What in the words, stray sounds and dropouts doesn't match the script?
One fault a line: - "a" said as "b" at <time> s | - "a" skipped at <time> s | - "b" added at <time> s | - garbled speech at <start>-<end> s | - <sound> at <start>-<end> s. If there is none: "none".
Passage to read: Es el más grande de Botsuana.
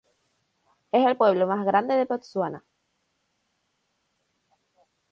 - "pueblo" added at 1.2 s